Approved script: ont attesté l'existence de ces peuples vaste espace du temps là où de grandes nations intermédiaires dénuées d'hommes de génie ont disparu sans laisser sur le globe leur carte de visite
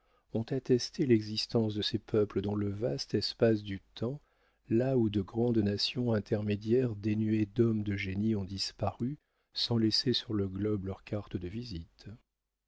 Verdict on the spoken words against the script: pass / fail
fail